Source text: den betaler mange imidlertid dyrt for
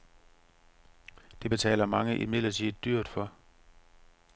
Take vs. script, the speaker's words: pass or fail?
fail